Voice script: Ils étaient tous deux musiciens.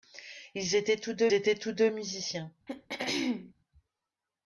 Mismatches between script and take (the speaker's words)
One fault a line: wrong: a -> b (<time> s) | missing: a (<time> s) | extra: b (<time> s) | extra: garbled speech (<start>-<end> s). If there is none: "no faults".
extra: étaient tous deux (1.3 s)